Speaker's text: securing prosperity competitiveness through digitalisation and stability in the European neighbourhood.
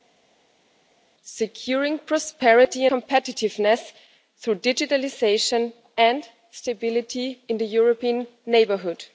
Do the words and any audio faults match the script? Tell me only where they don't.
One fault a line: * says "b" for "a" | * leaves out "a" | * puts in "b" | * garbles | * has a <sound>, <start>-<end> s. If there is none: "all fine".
all fine